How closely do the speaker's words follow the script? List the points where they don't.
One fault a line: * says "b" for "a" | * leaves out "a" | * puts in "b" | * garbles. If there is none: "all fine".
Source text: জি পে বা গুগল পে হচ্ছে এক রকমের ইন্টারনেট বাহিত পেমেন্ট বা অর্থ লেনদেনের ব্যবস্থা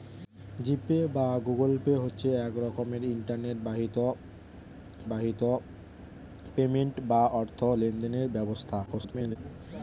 * puts in "বাহিত"
* garbles